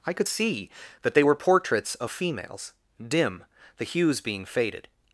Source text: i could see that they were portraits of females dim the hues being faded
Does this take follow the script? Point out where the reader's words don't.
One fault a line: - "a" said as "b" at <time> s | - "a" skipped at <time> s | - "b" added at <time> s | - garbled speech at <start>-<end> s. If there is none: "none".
none